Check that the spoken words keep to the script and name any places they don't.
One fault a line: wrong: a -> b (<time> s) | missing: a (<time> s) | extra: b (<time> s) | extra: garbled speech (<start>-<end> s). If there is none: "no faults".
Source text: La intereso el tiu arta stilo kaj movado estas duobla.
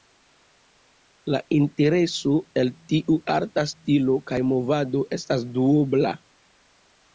no faults